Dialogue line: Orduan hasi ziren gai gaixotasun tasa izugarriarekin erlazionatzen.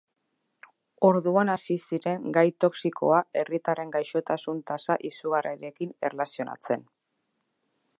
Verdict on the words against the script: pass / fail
fail